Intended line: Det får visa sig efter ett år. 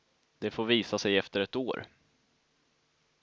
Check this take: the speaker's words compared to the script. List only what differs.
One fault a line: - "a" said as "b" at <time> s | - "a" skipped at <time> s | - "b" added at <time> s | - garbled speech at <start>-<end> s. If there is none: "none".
none